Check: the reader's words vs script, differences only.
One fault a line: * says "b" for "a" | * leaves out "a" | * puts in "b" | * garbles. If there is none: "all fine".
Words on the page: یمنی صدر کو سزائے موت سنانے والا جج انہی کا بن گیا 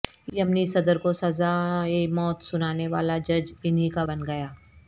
all fine